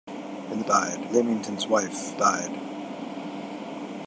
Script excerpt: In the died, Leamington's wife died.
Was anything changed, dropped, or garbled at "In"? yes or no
no